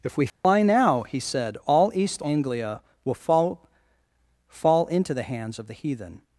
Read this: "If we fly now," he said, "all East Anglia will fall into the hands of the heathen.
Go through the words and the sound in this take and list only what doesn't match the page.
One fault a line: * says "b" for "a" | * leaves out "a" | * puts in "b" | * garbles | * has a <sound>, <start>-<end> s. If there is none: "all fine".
* has a dropout, 0.3-0.4 s
* puts in "fall"